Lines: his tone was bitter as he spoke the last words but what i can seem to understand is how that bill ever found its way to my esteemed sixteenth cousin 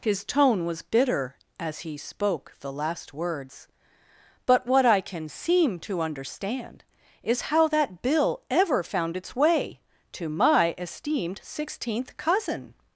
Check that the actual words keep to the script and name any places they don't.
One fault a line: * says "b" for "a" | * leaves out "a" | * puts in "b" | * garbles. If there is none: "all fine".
all fine